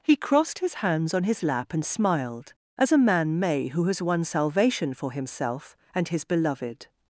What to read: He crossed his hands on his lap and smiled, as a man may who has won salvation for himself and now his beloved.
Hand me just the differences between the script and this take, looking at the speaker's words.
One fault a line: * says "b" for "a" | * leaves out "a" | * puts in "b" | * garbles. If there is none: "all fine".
* leaves out "now"